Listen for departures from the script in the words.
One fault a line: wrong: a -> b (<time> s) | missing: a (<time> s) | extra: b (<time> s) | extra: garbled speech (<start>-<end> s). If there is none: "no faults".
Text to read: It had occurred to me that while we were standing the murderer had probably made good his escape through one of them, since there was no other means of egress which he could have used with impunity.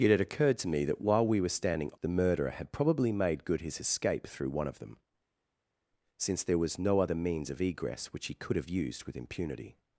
no faults